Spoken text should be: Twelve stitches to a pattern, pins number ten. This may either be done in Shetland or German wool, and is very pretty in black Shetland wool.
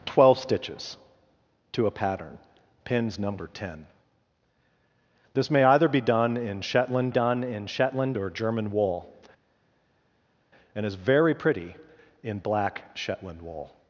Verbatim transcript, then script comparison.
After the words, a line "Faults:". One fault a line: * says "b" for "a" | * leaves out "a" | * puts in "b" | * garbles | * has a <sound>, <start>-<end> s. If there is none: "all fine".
Twelve stitches to a pattern, pins number ten. This may either be done in Shetland done in Shetland or German wool, and is very pretty in black Shetland wool.
Faults:
* puts in "done in Shetland"